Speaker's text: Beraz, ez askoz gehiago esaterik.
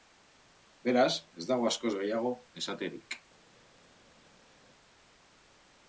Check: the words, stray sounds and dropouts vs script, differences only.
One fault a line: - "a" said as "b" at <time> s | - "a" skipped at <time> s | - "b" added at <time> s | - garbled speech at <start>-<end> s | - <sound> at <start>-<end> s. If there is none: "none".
- "dago" added at 1.5 s